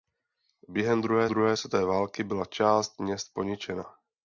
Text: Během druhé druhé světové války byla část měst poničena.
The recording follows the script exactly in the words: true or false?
true